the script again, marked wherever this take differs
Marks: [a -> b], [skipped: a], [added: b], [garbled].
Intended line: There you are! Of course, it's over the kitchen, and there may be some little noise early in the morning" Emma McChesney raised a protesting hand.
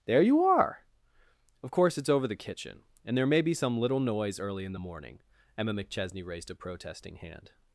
There you are! Of course, it's over the kitchen, and there may be some little noise early in the morning" Emma McChesney raised a protesting hand.